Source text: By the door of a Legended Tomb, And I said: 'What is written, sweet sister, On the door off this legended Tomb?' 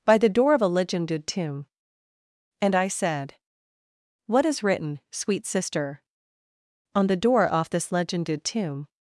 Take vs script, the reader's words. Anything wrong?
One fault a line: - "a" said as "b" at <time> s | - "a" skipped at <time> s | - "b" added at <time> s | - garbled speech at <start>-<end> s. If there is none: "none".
none